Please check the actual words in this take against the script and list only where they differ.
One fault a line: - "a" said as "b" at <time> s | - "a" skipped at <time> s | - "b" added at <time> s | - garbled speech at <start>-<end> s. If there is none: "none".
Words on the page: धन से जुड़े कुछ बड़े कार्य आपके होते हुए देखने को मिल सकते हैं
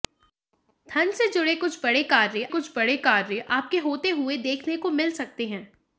- "कुछ बड़े कार्य" added at 2.5 s